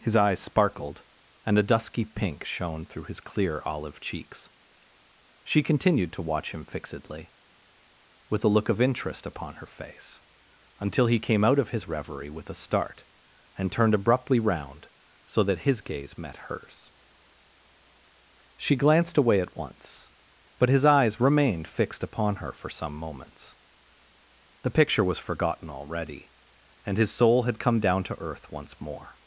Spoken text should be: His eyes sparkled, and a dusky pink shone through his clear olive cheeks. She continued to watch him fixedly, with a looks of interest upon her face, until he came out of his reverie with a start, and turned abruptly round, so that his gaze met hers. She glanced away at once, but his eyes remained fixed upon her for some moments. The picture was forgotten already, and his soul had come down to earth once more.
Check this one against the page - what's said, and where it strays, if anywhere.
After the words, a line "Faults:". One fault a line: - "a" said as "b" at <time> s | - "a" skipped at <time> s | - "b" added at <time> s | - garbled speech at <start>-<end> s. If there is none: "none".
His eyes sparkled, and a dusky pink shone through his clear olive cheeks. She continued to watch him fixedly, with a look of interest upon her face, until he came out of his reverie with a start, and turned abruptly round, so that his gaze met hers. She glanced away at once, but his eyes remained fixed upon her for some moments. The picture was forgotten already, and his soul had come down to earth once more.
Faults:
- "looks" said as "look" at 8.5 s